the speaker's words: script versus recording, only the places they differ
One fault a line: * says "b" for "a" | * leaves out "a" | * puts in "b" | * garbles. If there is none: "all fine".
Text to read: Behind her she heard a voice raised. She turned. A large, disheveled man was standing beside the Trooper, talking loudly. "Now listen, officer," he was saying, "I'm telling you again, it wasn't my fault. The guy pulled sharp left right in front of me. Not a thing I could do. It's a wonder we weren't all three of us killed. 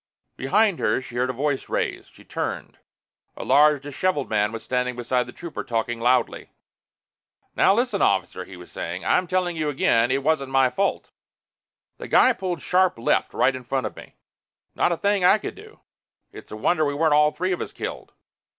all fine